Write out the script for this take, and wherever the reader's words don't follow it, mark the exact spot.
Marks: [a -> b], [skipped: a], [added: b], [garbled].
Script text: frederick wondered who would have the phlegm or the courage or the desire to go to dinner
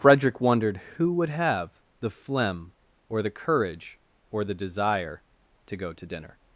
frederick wondered who would have the phlegm or the courage or the desire to go to dinner